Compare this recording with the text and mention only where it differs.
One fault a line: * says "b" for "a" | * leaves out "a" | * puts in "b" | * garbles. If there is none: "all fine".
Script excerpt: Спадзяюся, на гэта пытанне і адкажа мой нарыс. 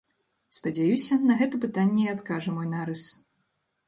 all fine